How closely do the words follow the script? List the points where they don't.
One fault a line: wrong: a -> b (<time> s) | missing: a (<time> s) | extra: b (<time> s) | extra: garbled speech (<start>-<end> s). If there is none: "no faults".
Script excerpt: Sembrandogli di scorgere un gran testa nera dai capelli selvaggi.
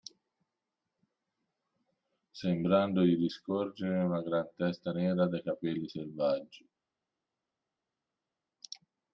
wrong: un -> una (4.0 s)